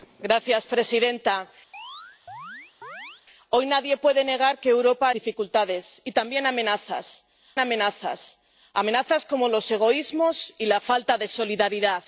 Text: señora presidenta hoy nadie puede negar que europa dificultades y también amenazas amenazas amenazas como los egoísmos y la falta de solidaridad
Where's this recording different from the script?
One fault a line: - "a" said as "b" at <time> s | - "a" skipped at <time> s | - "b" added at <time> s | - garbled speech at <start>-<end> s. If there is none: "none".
none